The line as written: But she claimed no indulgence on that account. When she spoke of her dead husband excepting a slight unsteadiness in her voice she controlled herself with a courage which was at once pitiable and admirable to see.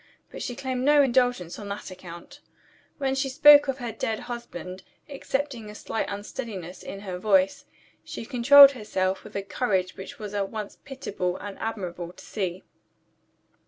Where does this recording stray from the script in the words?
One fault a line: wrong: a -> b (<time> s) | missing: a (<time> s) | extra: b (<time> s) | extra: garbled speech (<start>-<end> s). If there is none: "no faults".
no faults